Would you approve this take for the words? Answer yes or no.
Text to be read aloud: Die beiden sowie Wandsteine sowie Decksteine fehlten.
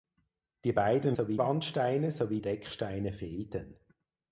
yes